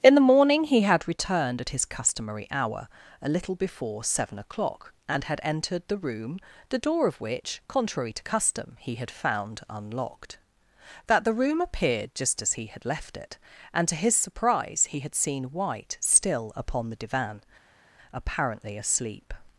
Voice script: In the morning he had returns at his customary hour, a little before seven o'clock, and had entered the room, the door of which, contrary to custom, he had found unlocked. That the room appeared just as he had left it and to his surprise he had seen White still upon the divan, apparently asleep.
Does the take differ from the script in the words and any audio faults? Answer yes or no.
yes